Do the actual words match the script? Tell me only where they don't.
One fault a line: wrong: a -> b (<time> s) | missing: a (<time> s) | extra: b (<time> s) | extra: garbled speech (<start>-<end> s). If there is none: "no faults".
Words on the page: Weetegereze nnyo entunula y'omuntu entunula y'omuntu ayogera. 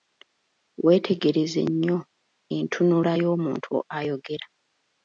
missing: entunula y'omuntu (3.7 s)